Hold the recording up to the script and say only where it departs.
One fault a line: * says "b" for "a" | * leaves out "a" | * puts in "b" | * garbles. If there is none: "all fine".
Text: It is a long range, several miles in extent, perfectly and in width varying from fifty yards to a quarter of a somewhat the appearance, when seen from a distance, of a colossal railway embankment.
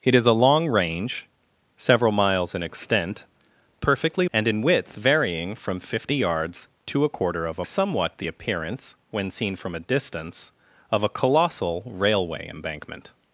all fine